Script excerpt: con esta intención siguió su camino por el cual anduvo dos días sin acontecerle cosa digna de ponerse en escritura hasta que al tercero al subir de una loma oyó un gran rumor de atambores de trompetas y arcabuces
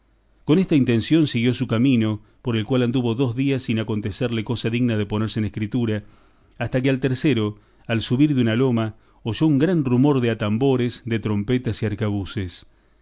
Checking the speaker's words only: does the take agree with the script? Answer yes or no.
yes